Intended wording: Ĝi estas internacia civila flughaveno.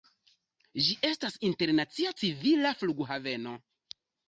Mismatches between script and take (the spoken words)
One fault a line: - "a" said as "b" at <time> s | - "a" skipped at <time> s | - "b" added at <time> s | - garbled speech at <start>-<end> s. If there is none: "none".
none